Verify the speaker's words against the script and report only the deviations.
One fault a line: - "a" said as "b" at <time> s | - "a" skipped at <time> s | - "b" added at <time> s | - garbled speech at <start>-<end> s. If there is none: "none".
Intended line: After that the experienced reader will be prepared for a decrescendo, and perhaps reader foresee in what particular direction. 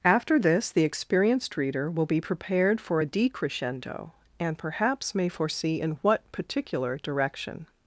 - "that" said as "this" at 0.4 s
- "reader" said as "may" at 5.2 s